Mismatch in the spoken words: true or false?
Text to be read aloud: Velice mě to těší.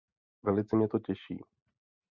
false